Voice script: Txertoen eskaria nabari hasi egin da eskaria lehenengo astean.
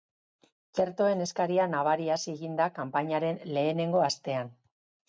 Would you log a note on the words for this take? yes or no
yes